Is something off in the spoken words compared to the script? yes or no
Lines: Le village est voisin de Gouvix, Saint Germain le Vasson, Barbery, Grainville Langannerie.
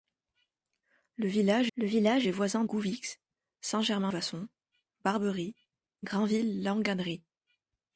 yes